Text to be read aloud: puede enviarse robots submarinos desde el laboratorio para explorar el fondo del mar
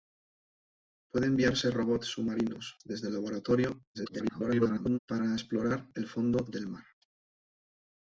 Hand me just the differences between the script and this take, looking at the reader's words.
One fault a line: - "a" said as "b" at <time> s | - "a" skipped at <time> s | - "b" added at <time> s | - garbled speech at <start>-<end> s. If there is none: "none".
- garbled speech at 3.9-5.0 s